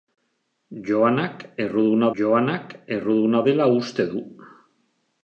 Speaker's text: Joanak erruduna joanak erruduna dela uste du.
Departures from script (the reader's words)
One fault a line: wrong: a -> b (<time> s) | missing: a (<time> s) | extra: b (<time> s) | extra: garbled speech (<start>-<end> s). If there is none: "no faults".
no faults